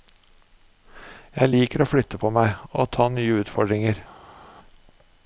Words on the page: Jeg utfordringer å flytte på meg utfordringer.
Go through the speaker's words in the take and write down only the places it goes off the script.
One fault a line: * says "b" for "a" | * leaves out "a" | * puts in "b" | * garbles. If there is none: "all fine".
* says "liker" for "utfordringer"
* puts in "og ta nye"